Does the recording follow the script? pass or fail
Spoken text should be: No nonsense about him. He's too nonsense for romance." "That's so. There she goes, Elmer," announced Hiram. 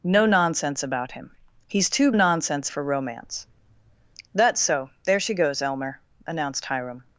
pass